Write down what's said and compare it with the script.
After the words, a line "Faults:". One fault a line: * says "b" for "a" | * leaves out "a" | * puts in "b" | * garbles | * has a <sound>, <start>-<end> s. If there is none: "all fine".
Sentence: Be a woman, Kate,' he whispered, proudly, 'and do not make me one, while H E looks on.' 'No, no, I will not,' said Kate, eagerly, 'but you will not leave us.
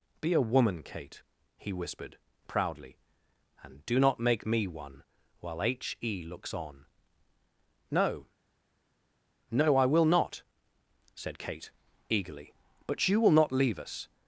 Be a woman, Kate,' he whispered, proudly, 'and do not make me one, while H E looks on.' 'No, no, I will not,' said Kate, eagerly, 'but you will not leave us.
Faults:
all fine